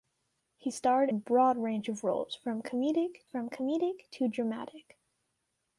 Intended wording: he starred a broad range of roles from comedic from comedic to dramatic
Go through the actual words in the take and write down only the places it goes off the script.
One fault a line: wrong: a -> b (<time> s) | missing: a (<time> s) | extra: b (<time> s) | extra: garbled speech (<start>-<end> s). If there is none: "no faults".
no faults